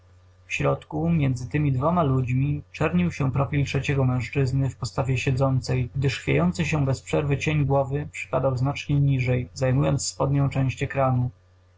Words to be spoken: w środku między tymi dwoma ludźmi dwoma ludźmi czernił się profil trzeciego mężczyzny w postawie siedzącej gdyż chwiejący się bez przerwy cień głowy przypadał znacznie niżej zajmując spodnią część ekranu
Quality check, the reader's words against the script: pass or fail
fail